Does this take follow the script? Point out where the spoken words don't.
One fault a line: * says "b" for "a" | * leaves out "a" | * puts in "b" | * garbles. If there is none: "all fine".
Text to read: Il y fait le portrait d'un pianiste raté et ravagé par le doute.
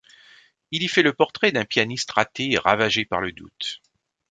all fine